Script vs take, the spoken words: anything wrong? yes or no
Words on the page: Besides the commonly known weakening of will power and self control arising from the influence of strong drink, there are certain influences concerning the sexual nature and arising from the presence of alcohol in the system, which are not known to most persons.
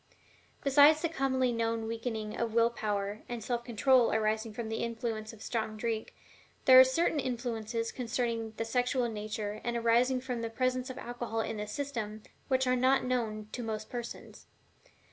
no